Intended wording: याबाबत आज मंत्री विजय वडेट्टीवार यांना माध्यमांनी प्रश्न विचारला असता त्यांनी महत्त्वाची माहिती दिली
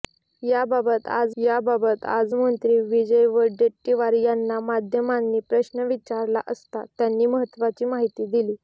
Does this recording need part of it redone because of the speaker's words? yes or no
yes